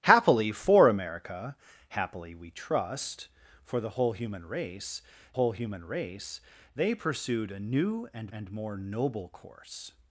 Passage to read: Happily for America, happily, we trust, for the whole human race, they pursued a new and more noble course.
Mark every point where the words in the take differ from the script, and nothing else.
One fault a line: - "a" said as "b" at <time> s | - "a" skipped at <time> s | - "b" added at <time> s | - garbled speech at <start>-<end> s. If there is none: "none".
- "whole human race" added at 5.3 s
- "and" added at 8.3 s